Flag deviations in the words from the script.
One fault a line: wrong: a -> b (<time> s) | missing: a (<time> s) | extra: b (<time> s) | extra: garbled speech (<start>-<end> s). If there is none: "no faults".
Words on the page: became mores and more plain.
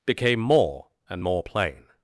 wrong: mores -> more (0.4 s)